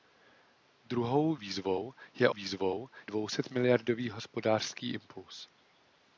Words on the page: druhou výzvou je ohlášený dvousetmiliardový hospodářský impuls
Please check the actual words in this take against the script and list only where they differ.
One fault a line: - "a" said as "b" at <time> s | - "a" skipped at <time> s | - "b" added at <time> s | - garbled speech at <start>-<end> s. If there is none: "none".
- "ohlášený" said as "výzvou" at 2.3 s